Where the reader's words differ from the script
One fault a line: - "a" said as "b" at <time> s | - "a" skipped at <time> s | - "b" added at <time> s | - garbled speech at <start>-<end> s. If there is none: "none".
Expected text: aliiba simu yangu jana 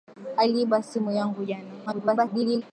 - garbled speech at 1.9-2.6 s